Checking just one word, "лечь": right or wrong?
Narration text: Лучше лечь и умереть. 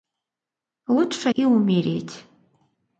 wrong